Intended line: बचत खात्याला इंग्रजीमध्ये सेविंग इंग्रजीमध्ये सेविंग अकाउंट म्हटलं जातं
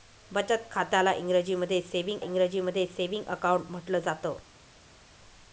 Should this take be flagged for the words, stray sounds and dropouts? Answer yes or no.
no